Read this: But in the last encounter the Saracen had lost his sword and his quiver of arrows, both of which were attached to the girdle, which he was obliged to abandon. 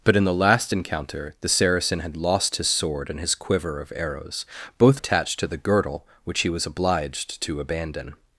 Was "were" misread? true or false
true